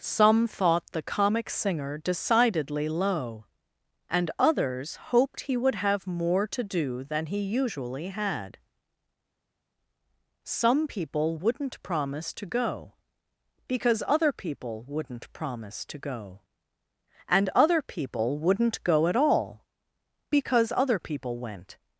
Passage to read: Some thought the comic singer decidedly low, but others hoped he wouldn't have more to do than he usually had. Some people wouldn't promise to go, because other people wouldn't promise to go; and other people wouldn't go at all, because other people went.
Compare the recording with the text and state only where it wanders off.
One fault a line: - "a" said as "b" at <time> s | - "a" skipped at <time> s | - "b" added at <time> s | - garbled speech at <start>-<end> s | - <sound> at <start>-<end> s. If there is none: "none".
- "but" said as "and" at 4.1 s
- "wouldn't" said as "would" at 5.5 s